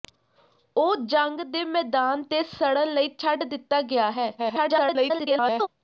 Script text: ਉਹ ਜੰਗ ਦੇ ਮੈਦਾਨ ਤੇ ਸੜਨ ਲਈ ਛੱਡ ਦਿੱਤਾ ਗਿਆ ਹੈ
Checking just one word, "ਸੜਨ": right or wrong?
right